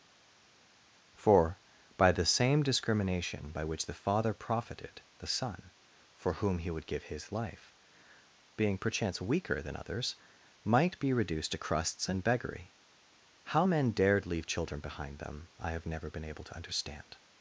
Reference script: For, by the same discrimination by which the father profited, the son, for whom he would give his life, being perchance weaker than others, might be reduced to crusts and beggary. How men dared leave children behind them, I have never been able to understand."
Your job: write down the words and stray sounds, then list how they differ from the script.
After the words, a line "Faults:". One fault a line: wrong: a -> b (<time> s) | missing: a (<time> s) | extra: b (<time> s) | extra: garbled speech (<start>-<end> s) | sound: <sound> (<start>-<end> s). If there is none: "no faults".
For, by the same discrimination by which the father profited, the son, for whom he would give his life, being perchance weaker than others, might be reduced to crusts and beggary. How men dared leave children behind them, I have never been able to understand."
Faults:
no faults